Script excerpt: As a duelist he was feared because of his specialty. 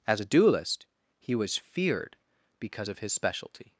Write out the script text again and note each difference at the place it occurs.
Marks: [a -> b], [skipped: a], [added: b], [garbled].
As a duelist he was feared because of his specialty.